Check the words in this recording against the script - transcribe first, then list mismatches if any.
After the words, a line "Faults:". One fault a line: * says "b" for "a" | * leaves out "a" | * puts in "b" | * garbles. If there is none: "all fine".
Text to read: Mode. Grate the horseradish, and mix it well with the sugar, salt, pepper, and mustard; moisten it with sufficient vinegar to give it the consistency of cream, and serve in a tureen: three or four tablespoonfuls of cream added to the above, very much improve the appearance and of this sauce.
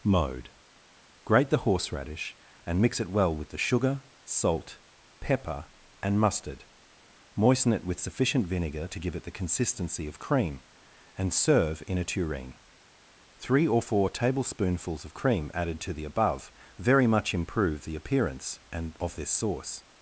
Mode. Grate the horseradish, and mix it well with the sugar, salt, pepper, and mustard; moisten it with sufficient vinegar to give it the consistency of cream, and serve in a tureen: three or four tablespoonfuls of cream added to the above, very much improve the appearance and of this sauce.
Faults:
all fine